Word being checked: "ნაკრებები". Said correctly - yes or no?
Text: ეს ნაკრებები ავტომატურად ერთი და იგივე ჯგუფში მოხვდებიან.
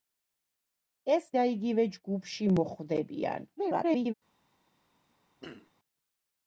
no